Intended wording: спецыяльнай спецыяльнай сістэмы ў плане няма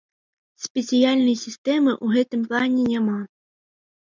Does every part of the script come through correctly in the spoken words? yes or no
no